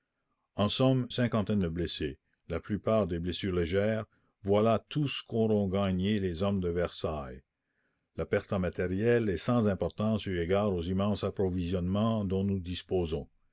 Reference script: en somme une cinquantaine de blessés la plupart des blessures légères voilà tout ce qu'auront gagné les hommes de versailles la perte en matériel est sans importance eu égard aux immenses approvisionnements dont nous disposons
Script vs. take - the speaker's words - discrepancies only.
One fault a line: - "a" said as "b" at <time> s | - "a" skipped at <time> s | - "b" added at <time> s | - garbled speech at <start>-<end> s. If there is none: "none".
- "une" skipped at 1.1 s